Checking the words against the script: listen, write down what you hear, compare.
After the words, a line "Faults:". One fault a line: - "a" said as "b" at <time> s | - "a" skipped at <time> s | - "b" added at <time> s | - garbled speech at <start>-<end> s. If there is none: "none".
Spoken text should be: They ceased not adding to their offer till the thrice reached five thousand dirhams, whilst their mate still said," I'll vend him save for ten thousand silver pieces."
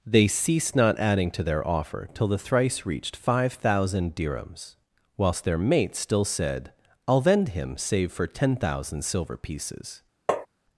They ceased not adding to their offer till the thrice reached five thousand dirhams, whilst their mate still said," I'll vend him save for ten thousand silver pieces."
Faults:
none